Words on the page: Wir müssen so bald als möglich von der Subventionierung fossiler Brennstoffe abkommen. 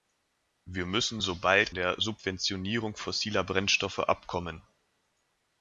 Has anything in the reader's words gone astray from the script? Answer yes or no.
yes